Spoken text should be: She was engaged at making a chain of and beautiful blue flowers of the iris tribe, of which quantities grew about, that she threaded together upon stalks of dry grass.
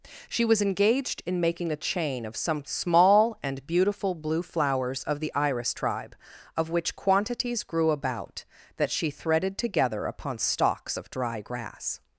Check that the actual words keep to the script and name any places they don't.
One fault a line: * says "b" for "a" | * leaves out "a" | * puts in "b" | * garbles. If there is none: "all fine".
* says "in" for "at"
* puts in "some small"